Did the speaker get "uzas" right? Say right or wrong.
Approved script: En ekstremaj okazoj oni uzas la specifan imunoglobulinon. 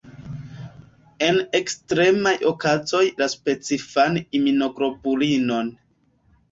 wrong